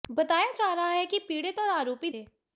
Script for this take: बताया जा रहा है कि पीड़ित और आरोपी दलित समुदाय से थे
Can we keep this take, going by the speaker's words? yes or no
no